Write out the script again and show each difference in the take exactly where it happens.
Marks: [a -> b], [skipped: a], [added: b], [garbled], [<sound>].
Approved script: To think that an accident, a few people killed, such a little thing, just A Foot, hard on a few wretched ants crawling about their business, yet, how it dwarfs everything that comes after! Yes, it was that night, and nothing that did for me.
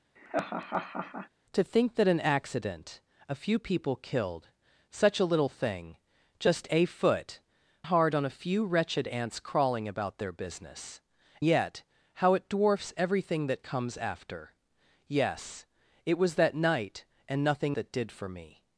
[laugh] To think that an accident, a few people killed, such a little thing, just A Foot, hard on a few wretched ants crawling about their business, yet, how it dwarfs everything that comes after! Yes, it was that night, and nothing that did for me.